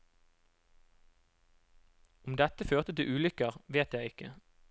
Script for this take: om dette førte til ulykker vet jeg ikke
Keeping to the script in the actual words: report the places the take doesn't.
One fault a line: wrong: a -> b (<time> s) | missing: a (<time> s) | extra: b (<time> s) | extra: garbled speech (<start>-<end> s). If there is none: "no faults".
no faults